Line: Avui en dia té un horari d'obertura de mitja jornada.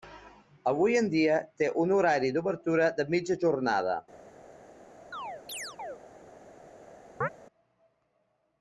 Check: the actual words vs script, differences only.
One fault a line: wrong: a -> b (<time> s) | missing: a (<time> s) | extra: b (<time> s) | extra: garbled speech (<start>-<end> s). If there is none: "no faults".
no faults